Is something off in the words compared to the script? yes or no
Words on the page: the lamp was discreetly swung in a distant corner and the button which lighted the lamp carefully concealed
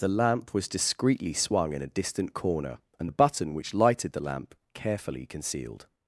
no